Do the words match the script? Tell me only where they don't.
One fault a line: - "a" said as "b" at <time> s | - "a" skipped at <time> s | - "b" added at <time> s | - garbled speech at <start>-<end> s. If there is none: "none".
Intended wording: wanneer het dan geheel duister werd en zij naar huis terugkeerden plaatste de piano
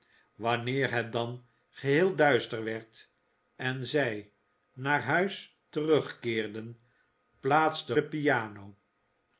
none